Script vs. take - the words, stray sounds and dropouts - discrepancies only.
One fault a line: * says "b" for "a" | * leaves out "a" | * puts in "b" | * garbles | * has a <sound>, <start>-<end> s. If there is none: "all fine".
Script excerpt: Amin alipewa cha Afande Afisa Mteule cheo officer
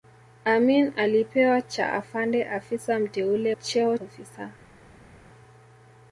all fine